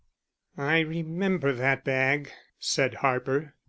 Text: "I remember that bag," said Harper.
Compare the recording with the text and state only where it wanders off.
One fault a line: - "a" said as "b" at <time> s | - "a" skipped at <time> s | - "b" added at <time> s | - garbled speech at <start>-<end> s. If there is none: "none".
none